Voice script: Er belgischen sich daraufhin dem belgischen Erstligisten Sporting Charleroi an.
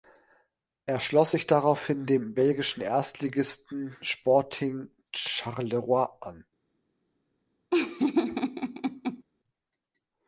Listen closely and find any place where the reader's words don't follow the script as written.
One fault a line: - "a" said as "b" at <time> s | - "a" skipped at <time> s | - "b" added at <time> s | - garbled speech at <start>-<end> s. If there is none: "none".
- "belgischen" said as "schloss" at 1.0 s